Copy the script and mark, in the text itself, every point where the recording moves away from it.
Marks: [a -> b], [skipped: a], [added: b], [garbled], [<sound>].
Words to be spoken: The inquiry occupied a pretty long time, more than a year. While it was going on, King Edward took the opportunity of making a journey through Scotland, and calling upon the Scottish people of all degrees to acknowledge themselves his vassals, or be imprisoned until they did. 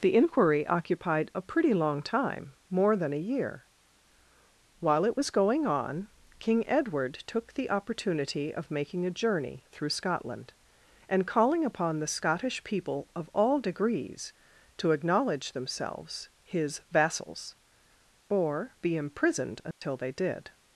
The inquiry occupied a pretty long time, more than a year. While it was going on, King Edward took the opportunity of making a journey through Scotland, and calling upon the Scottish people of all degrees to acknowledge themselves his vassals, or be imprisoned until [dropout] they did.